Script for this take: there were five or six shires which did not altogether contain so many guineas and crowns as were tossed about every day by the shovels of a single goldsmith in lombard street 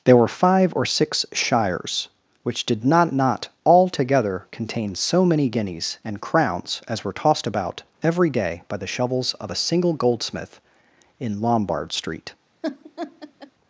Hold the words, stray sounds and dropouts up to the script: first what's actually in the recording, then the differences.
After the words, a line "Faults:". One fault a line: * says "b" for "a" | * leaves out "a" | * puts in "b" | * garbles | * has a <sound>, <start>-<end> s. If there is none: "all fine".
there were five or six shires which did not not altogether contain so many guineas and crowns as were tossed about every day by the shovels of a single goldsmith in lombard street
Faults:
* puts in "not"
* has a laugh, 12.6-13.5 s